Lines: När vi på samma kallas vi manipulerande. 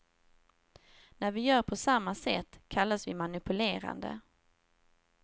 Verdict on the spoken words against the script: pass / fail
fail